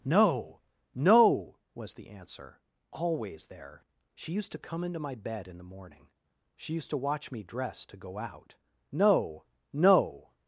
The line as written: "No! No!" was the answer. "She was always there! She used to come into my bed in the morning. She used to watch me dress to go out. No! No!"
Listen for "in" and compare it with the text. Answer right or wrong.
right